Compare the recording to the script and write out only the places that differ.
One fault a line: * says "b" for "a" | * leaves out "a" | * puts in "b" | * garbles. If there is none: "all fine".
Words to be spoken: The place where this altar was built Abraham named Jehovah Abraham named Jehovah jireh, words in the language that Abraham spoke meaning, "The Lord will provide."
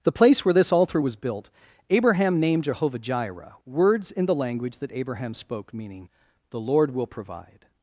* leaves out "Abraham named Jehovah"